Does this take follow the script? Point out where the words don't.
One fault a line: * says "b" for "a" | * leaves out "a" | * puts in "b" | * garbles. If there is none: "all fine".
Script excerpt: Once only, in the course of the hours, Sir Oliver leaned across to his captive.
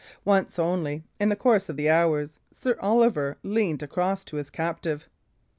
all fine